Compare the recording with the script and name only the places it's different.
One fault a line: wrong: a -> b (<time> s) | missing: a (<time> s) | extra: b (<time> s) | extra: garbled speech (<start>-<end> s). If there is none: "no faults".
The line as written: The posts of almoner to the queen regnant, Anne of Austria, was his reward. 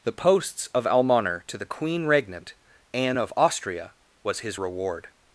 no faults